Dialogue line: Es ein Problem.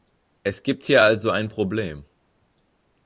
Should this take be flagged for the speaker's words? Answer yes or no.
yes